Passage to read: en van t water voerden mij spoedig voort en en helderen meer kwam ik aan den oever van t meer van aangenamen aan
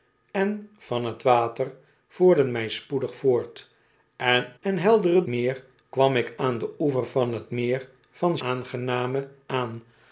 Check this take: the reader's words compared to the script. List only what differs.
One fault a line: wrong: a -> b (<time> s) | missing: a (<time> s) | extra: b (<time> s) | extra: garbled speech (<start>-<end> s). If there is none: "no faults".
no faults